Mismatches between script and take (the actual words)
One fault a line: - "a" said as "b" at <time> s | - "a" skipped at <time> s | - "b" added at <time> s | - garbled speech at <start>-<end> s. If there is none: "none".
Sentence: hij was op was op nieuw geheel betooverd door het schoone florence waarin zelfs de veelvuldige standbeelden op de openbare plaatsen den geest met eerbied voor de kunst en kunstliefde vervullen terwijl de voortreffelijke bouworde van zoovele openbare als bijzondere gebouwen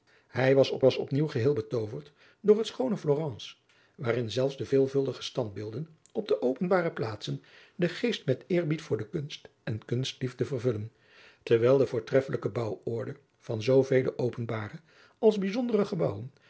none